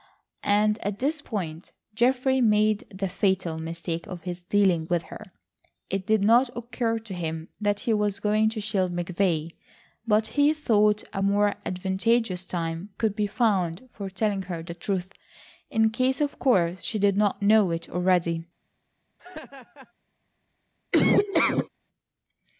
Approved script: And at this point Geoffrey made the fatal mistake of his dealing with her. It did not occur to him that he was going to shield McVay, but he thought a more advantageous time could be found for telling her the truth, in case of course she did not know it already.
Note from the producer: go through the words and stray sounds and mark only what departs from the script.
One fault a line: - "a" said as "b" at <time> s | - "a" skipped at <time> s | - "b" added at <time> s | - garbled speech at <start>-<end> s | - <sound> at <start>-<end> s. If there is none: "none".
- laugh at 19.2-19.9 s
- laugh at 20.9-21.7 s